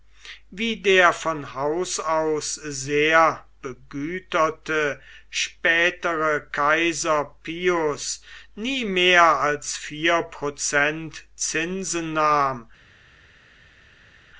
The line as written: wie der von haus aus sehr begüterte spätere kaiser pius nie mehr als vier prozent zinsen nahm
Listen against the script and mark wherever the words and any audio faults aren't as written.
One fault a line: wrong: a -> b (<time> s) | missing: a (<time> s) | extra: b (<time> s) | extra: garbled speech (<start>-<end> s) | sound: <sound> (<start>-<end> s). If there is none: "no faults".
no faults